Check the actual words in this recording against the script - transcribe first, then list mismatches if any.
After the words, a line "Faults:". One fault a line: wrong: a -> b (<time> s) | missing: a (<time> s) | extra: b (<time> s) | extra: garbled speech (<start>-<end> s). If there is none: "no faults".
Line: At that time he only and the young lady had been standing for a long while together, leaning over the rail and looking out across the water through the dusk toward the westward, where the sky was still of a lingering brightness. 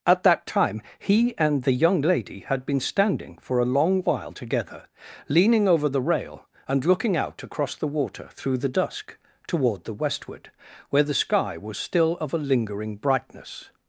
At that time he and the young lady had been standing for a long while together, leaning over the rail and looking out across the water through the dusk toward the westward, where the sky was still of a lingering brightness.
Faults:
missing: only (1.4 s)